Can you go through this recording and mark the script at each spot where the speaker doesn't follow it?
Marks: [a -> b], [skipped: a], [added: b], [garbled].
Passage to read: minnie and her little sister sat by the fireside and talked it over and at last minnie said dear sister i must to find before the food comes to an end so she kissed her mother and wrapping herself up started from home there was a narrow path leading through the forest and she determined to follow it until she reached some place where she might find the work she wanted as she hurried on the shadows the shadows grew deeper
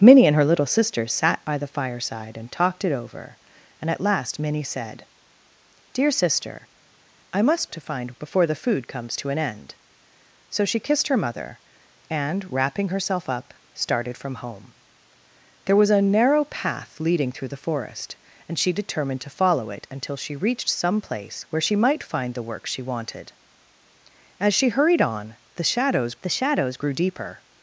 minnie and her little sister sat by the fireside and talked it over and at last minnie said dear sister i must to find before the food comes to an end so she kissed her mother and wrapping herself up started from home there was a narrow path leading through the forest and she determined to follow it until she reached some place where she might find the work she wanted as she hurried on the shadows the shadows grew deeper